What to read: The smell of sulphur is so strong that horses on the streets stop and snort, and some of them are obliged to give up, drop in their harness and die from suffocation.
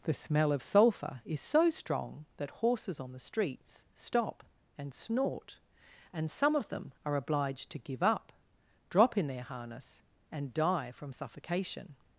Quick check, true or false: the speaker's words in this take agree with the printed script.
true